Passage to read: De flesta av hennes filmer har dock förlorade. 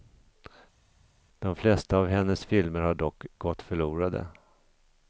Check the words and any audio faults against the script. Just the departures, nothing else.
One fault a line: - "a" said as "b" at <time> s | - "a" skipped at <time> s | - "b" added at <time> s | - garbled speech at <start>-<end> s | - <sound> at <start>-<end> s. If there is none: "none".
- "gått" added at 3.4 s